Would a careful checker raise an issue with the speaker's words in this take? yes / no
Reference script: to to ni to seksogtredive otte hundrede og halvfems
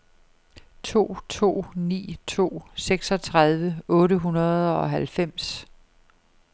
no